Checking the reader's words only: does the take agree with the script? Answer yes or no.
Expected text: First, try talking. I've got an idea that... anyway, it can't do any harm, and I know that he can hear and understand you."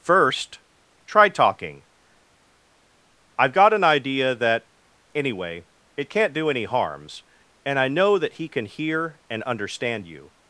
no